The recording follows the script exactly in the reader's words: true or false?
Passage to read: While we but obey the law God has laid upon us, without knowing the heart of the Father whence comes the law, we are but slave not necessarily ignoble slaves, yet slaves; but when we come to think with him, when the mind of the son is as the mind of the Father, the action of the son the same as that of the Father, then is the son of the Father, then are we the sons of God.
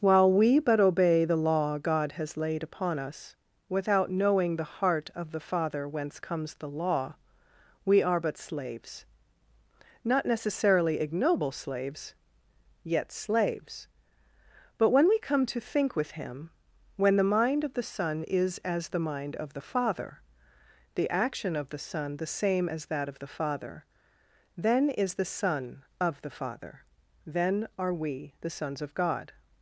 false